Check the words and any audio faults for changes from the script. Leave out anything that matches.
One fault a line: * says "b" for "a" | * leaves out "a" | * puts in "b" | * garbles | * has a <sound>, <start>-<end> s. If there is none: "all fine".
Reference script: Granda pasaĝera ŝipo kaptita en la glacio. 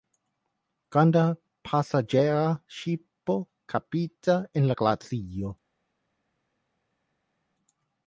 all fine